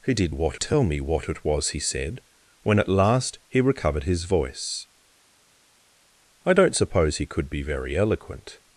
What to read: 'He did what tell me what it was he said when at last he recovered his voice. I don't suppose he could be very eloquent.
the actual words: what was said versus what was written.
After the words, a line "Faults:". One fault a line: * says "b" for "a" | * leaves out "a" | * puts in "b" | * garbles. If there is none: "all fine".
'He did what tell me what it was he said when at last he recovered his voice. I don't suppose he could be very eloquent.
Faults:
all fine